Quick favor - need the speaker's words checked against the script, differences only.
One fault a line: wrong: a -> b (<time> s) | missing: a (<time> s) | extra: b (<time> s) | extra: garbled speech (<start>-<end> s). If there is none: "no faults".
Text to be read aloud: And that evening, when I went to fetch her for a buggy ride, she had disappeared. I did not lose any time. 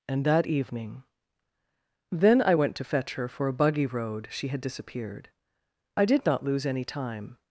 wrong: when -> then (2.1 s)
wrong: ride -> road (3.9 s)